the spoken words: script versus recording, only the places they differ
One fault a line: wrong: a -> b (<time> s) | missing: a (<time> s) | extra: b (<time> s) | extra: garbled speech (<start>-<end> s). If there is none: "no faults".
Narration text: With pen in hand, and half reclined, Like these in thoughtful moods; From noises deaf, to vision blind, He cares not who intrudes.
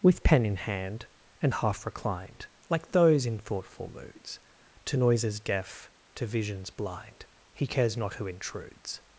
wrong: these -> those (2.9 s)
wrong: From -> To (4.9 s)
wrong: vision -> visions (6.3 s)